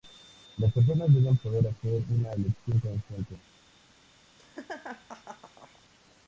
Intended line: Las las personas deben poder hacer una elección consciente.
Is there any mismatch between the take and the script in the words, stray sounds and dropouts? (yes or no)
yes